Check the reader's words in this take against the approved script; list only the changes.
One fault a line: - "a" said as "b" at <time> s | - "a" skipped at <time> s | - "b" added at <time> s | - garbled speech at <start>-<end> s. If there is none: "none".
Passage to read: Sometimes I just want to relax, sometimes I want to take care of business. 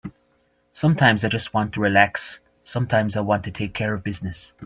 none